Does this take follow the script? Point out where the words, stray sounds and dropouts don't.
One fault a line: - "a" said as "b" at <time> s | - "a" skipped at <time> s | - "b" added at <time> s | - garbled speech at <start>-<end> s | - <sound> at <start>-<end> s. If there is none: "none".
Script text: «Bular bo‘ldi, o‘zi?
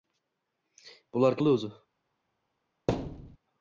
- thud at 2.9-3.4 s